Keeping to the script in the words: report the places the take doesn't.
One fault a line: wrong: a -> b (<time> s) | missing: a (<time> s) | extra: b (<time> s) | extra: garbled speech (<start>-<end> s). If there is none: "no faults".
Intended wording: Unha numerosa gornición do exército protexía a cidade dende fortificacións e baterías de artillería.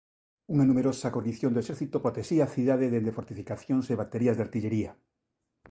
no faults